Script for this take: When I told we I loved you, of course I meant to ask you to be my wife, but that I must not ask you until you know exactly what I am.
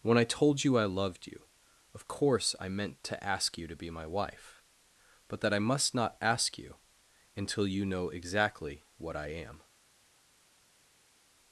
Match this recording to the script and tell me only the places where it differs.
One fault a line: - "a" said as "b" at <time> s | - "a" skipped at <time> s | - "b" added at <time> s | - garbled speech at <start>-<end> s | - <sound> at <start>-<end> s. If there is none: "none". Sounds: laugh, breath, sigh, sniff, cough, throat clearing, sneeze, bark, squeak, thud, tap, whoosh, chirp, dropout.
- "we" said as "you" at 0.6 s